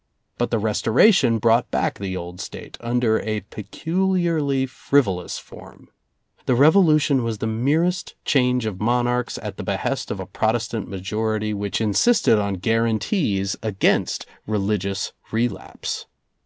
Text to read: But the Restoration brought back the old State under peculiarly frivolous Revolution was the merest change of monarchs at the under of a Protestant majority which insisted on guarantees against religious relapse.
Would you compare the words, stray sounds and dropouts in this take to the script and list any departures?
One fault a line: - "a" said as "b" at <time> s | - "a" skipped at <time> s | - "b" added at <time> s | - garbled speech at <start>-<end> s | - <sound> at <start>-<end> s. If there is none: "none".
- "a" added at 3.2 s
- "form The" added at 5.4 s
- "under" said as "behest" at 9.6 s